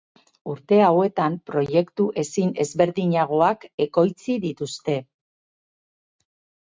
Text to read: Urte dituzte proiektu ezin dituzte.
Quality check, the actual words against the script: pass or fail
fail